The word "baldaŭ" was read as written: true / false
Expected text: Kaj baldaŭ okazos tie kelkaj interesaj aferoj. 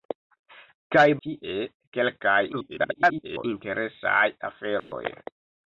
false